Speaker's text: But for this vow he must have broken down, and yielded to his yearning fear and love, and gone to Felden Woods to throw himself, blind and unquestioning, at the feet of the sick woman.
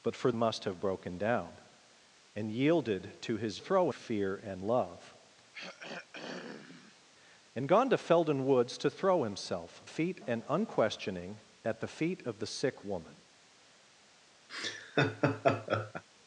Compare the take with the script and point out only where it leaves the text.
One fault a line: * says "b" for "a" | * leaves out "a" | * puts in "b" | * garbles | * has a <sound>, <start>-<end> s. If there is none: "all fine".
* leaves out "this vow he"
* says "throw" for "yearning"
* has a throat clearing, 5.5-7.0 s
* says "feet" for "blind"
* has a laugh, 14.5-16.0 s